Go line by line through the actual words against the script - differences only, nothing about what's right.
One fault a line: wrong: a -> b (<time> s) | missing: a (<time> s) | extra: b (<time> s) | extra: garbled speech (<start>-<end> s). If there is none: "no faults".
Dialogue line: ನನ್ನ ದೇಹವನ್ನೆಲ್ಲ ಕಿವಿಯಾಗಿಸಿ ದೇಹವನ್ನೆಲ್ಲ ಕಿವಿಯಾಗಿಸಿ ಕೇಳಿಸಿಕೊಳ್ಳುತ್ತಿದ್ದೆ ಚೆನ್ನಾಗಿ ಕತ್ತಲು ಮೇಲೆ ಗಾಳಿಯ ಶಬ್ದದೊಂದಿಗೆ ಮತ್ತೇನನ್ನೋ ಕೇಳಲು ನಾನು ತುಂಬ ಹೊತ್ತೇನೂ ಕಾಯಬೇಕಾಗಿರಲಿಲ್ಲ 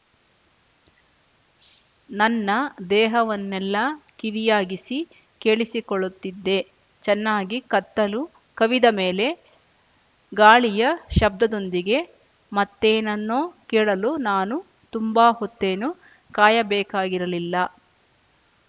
missing: ದೇಹವನ್ನೆಲ್ಲ ಕಿವಿಯಾಗಿಸಿ (5.0 s)
extra: ಕವಿದ (8.6 s)